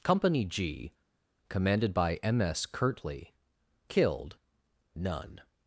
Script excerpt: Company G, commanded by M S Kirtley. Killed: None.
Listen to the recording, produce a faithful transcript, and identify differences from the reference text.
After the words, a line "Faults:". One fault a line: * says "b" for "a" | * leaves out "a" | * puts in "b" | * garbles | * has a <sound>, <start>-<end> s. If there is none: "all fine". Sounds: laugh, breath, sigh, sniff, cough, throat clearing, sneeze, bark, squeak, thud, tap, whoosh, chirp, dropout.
Company G, commanded by M S Kirtley. Killed: None.
Faults:
all fine